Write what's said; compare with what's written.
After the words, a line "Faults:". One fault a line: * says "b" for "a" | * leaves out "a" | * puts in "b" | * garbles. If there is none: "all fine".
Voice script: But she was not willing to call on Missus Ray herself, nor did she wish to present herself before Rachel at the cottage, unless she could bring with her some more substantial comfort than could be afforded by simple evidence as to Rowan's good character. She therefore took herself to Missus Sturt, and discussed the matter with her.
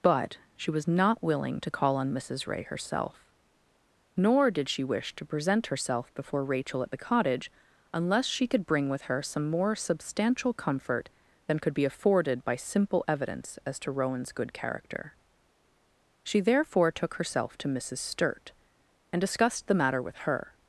But she was not willing to call on Missus Ray herself, nor did she wish to present herself before Rachel at the cottage, unless she could bring with her some more substantial comfort than could be afforded by simple evidence as to Rowan's good character. She therefore took herself to Missus Sturt, and discussed the matter with her.
Faults:
all fine